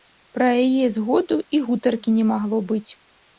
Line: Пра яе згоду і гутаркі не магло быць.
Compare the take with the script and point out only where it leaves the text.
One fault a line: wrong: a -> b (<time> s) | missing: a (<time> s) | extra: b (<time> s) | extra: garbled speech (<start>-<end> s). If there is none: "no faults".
no faults